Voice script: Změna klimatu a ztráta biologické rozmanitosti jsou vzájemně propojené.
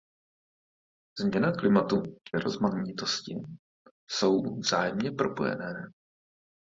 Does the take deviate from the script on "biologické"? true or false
true